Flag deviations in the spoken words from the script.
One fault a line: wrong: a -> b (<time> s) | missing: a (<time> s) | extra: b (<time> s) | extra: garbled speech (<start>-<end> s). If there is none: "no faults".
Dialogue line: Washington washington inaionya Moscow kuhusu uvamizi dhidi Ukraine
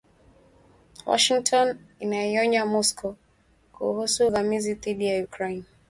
missing: washington (1.8 s)
extra: ya (5.0 s)